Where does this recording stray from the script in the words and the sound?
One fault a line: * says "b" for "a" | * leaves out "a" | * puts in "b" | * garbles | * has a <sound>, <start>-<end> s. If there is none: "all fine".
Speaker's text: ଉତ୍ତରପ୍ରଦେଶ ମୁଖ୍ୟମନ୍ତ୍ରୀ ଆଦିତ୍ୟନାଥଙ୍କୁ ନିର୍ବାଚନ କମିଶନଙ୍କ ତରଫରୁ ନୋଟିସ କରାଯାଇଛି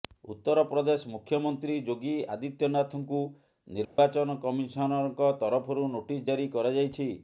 * puts in "ଯୋଗୀ"
* has a dropout, 3.8-4.0 s
* puts in "ଜାରି"